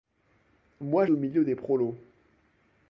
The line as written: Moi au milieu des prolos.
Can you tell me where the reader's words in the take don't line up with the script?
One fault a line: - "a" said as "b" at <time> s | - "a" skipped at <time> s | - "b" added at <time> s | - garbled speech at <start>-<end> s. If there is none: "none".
none